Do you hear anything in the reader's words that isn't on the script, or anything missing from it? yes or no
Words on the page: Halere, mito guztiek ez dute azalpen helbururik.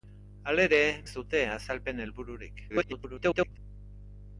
yes